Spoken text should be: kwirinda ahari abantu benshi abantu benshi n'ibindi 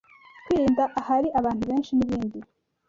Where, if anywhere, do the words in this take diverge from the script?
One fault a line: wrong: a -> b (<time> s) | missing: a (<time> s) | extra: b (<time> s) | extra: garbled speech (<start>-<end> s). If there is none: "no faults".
missing: abantu benshi (1.9 s)